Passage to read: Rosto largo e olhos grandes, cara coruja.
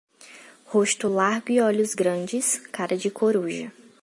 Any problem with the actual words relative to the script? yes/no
yes